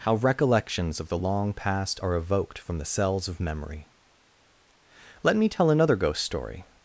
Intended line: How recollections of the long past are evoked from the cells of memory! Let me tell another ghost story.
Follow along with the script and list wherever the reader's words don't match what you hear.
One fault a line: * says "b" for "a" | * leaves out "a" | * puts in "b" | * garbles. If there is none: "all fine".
all fine